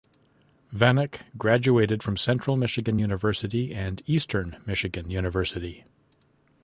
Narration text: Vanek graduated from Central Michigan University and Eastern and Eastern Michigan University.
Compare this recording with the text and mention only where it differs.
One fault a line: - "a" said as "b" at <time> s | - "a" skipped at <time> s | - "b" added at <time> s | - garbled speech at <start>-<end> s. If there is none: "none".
- "and Eastern" skipped at 4.6 s